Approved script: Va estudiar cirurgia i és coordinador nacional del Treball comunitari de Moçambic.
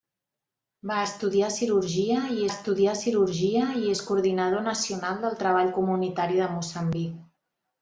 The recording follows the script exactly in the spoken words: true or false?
false